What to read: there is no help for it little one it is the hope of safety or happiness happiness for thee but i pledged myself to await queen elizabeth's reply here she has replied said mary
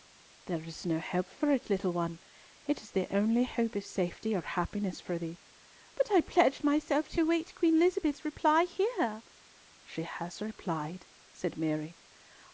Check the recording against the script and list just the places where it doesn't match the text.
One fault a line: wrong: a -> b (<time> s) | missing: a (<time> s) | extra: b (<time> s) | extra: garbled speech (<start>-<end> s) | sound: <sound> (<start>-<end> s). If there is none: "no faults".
extra: only (3.1 s)
missing: happiness (5.0 s)